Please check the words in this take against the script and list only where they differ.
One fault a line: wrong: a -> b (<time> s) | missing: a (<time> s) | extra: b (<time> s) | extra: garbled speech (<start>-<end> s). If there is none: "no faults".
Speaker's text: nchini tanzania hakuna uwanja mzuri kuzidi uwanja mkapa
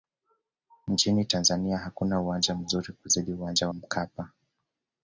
no faults